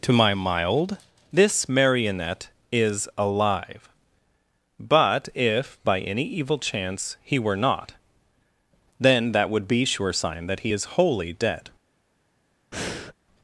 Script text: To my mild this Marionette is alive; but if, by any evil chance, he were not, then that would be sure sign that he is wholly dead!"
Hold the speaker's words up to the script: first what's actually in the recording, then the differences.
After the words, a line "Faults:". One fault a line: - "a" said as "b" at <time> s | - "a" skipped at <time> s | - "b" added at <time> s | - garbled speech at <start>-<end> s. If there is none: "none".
To my mild this Marionette is alive; but if, by any evil chance, he were not, then that would be sure sign that he is wholly dead!"
Faults:
none